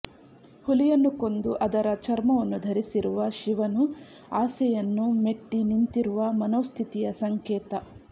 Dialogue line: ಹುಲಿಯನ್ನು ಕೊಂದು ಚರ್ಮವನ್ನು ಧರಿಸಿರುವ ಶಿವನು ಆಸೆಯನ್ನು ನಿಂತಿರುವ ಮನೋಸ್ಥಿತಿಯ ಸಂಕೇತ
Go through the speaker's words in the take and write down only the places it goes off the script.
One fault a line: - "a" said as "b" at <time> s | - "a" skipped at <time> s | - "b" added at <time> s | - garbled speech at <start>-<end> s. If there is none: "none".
- "ಅದರ" added at 1.6 s
- "ಮೆಟ್ಟಿ" added at 5.2 s